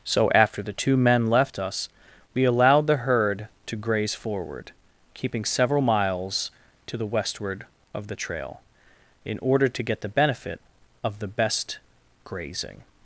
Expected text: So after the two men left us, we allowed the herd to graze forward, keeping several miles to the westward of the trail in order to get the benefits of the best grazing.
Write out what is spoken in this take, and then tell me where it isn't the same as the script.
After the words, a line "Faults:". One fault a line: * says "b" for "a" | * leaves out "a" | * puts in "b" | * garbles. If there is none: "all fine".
So after the two men left us, we allowed the herd to graze forward, keeping several miles to the westward of the trail in order to get the benefit of the best grazing.
Faults:
* says "benefit" for "benefits"